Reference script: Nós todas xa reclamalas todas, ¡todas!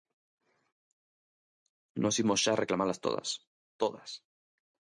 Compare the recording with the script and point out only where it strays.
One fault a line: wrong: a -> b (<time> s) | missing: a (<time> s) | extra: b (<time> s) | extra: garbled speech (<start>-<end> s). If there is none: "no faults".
wrong: todas -> imos (2.2 s)